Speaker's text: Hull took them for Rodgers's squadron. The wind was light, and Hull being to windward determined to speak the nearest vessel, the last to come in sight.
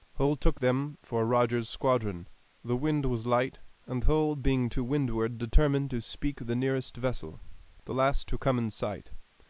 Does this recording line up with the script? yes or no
yes